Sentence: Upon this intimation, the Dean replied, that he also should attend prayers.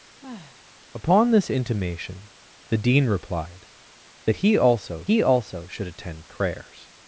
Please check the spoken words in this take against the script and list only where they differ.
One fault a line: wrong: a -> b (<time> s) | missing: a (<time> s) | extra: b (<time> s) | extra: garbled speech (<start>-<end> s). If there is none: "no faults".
extra: he also (5.0 s)